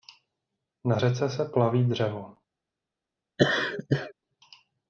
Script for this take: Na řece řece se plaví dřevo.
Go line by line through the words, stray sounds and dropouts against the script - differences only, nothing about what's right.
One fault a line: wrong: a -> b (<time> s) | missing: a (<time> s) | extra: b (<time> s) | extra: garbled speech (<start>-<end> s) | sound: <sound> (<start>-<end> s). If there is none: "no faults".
missing: řece (1.3 s)
sound: laugh (3.4-4.1 s)